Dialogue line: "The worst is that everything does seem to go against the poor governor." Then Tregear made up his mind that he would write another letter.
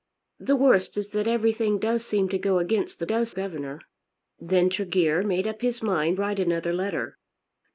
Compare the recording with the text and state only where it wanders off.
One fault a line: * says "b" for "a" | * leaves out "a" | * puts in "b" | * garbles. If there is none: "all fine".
* says "does" for "poor"
* leaves out "that he would"